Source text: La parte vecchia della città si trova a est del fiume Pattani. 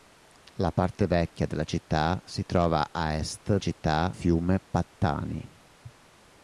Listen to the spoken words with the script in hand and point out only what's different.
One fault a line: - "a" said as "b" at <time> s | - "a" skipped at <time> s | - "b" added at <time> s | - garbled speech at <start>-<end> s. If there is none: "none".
- "del" said as "città" at 3.6 s